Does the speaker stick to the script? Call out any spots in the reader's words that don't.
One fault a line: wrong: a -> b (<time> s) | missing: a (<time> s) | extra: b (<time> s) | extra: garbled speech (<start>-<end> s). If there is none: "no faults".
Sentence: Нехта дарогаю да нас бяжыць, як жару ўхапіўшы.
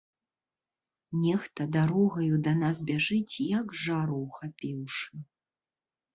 no faults